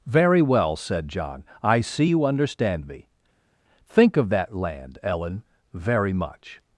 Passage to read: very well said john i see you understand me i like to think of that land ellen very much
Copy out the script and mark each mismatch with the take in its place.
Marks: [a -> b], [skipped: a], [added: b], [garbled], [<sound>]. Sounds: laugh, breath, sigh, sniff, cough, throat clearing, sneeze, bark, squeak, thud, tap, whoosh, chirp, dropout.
very well said john i see you understand me [skipped: i like to] think of that land ellen very much